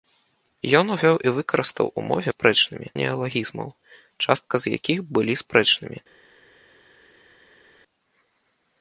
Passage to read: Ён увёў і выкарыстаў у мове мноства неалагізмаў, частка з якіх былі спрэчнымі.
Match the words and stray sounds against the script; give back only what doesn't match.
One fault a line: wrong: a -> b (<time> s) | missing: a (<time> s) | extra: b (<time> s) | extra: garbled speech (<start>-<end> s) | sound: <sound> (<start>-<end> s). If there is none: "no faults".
wrong: мноства -> спрэчнымі (2.3 s)